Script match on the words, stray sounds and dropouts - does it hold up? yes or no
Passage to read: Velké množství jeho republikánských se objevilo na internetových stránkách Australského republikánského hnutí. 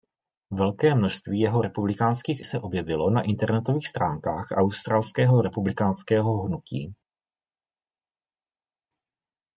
yes